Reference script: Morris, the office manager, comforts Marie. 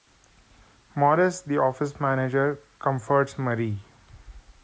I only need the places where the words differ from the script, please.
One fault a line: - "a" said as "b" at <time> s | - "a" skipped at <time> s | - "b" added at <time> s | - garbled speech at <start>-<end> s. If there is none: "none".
none